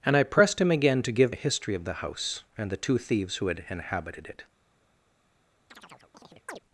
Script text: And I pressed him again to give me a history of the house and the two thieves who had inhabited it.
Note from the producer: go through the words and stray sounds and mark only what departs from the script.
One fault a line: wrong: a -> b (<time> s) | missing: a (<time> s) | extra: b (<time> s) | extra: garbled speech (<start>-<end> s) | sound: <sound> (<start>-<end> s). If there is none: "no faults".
missing: me (1.4 s)
sound: chirp (5.7-6.6 s)